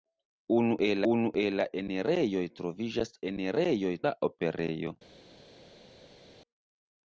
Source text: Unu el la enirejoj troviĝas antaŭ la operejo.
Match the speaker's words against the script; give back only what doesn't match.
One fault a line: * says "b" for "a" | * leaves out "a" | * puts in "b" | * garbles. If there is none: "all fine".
* puts in "unu el"
* says "enirejoj" for "antaŭ"